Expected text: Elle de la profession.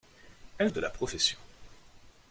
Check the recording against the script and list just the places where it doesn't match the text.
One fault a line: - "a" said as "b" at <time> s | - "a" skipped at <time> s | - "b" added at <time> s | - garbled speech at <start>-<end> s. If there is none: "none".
none